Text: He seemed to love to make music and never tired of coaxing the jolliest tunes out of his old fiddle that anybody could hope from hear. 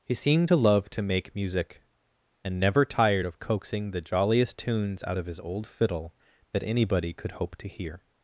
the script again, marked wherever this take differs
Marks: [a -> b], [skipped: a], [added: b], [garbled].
He seemed to love to make music and never tired of coaxing the jolliest tunes out of his old fiddle that anybody could hope [from -> to] hear.